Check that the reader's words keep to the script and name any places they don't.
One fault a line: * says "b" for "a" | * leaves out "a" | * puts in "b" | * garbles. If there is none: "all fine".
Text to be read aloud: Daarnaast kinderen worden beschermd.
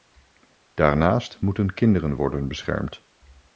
* puts in "moeten"